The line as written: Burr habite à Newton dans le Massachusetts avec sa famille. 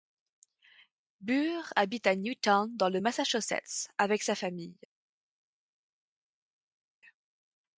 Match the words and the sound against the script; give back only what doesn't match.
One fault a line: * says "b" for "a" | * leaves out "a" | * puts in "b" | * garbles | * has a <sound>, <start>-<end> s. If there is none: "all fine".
all fine